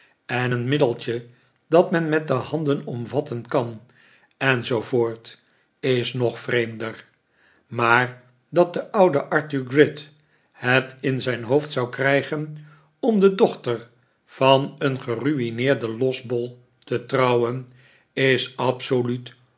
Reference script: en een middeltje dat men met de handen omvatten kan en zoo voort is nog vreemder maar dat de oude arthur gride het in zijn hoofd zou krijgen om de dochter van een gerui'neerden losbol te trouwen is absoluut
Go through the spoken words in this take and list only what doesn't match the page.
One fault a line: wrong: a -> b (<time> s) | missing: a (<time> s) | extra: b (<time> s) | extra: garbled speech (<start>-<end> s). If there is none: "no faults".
no faults